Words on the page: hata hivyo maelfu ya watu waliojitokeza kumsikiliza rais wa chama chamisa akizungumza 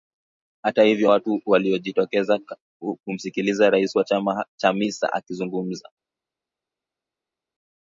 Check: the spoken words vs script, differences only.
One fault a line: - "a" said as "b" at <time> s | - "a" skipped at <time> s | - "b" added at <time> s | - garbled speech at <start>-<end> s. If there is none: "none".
- "maelfu ya" skipped at 1.1 s